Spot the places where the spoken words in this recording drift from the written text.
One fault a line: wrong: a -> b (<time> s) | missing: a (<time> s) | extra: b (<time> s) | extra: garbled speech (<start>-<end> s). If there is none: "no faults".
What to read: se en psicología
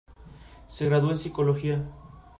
extra: graduó (0.9 s)